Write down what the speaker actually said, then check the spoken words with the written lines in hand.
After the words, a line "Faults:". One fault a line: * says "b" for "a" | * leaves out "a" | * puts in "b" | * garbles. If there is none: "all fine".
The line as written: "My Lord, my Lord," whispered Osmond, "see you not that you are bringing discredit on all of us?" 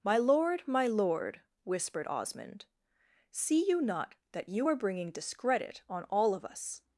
"My Lord, my Lord," whispered Osmond, "see you not that you are bringing discredit on all of us?"
Faults:
all fine